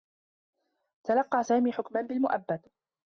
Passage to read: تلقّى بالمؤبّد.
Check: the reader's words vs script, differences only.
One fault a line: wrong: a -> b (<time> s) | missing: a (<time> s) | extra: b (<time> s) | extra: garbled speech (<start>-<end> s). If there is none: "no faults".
extra: سامي حكما (1.4 s)